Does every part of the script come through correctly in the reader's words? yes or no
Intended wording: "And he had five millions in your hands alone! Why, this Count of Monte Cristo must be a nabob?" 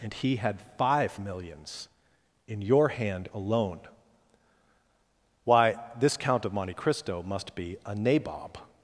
no